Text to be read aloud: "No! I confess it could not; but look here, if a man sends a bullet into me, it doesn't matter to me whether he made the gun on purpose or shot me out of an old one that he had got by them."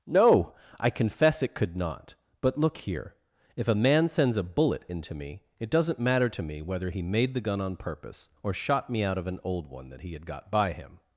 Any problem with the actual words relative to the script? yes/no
yes